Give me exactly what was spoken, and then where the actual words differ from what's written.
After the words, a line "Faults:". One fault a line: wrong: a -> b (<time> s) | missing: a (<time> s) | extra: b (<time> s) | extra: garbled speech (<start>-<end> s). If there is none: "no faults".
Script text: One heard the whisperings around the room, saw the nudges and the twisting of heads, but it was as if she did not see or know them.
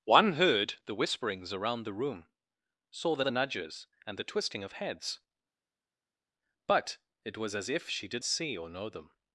One heard the whisperings around the room, saw the the nudges and the twisting of heads, but it was as if she did see or know them.
Faults:
extra: the (3.2 s)
missing: not (8.2 s)